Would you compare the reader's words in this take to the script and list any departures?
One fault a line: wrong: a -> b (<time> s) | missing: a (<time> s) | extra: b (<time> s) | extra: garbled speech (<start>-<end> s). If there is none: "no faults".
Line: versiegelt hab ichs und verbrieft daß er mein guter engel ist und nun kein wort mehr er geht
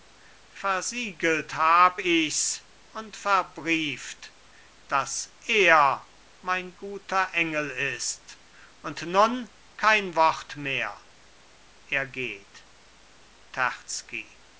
no faults